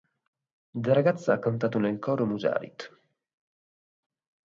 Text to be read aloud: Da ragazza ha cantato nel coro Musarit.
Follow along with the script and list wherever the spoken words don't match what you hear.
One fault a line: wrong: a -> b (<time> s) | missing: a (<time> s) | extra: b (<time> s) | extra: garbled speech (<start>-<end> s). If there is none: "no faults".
no faults